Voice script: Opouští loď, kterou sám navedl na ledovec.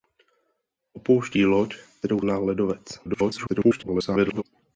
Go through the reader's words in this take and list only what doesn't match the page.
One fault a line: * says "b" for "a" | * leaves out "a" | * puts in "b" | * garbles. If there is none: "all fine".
* leaves out "sám navedl"
* garbles